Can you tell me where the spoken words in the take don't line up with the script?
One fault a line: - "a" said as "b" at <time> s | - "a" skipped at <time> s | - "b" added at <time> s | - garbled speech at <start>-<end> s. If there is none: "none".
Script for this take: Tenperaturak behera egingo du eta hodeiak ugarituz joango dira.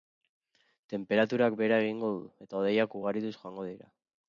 none